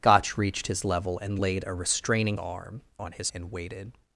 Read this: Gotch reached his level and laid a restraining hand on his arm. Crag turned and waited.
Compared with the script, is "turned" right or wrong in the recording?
wrong